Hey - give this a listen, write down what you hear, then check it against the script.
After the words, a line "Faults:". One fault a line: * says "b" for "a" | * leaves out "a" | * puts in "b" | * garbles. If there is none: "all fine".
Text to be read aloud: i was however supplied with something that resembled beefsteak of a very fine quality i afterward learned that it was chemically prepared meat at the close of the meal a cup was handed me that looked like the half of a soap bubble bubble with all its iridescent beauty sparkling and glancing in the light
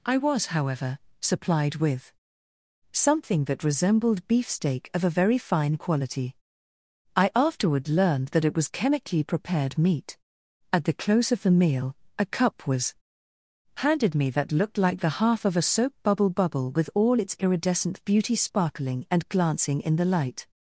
i was however supplied with something that resembled beefsteak of a very fine quality i afterward learned that it was chemically prepared meat at the close of the meal a cup was handed me that looked like the half of a soap bubble bubble with all its iridescent beauty sparkling and glancing in the light
Faults:
all fine